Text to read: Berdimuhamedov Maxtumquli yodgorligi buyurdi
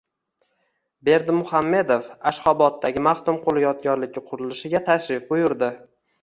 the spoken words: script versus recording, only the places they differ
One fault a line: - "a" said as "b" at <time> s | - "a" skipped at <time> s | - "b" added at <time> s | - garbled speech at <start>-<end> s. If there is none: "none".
- "Ashxoboddagi" added at 2.3 s
- "qurilishiga tashrif" added at 4.3 s